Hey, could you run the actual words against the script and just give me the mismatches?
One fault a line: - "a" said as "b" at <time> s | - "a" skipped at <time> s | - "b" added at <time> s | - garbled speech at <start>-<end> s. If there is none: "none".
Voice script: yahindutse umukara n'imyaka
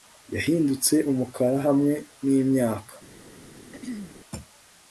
- "hamwe" added at 1.7 s